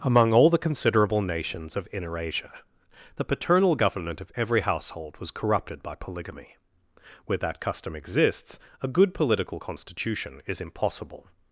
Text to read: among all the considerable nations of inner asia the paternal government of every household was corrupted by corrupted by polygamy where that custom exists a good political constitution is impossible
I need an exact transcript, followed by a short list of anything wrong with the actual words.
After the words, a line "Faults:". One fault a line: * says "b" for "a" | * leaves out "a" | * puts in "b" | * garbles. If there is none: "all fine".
among all the considerable nations of inner asia the paternal government of every household was corrupted by polygamy where that custom exists a good political constitution is impossible
Faults:
* leaves out "corrupted by"